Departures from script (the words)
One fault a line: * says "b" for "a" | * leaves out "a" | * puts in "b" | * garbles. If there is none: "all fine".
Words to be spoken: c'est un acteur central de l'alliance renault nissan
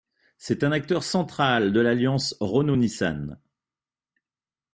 all fine